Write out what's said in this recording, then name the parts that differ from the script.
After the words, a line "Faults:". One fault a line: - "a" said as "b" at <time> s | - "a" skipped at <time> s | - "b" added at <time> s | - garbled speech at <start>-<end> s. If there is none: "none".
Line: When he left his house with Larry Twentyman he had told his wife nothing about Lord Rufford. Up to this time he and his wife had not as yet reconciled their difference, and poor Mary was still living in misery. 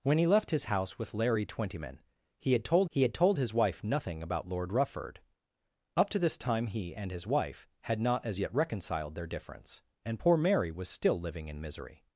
When he left his house with Larry Twentyman he had told he had told his wife nothing about Lord Rufford. Up to this time he and his wife had not as yet reconciled their difference, and poor Mary was still living in misery.
Faults:
- "he had told" added at 2.9 s